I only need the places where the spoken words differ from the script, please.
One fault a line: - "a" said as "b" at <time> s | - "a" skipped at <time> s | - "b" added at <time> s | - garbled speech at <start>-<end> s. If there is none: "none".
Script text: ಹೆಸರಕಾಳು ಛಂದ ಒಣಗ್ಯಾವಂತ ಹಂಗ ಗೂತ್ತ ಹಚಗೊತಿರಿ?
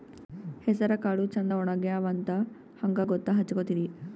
none